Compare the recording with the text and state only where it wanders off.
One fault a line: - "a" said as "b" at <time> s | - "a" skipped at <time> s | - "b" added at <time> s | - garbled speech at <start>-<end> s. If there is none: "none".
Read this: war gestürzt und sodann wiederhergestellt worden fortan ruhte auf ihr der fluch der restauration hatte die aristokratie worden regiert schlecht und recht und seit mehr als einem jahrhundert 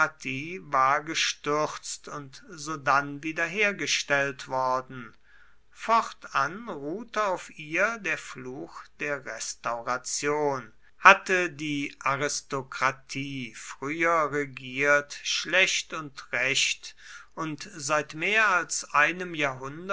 - "worden" said as "früher" at 13.6 s